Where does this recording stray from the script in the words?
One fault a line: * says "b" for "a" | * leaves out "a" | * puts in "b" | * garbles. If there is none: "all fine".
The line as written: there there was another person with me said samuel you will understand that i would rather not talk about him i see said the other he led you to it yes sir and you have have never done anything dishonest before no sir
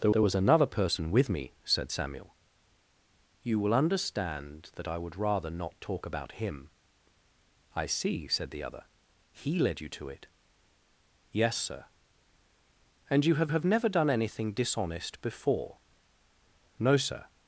all fine